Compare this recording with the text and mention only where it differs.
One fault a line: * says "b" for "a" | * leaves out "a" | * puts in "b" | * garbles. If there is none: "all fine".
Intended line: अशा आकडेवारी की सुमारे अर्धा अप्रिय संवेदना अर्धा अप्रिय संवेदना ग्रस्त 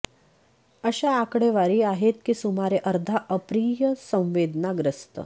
* puts in "आहेत"
* leaves out "अर्धा अप्रिय संवेदना"